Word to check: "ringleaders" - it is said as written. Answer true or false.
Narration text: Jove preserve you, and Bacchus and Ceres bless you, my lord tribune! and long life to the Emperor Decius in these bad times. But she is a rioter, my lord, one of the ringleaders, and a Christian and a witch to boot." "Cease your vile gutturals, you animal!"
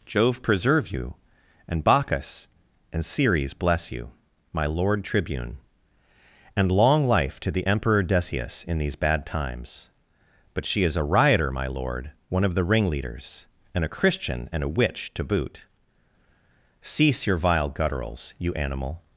true